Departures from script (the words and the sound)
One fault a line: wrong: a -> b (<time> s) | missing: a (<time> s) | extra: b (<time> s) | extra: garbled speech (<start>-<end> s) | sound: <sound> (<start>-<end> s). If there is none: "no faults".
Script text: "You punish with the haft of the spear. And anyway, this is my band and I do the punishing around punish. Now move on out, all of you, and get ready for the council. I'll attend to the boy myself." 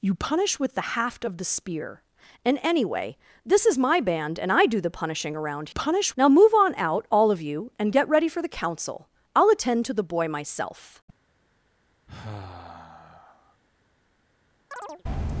sound: sigh (12.1-13.6 s)
sound: chirp (14.7-15.0 s)